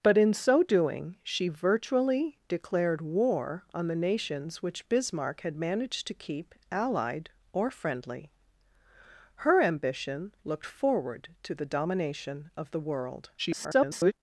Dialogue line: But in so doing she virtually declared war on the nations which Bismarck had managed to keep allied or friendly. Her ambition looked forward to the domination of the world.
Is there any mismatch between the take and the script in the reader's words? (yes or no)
yes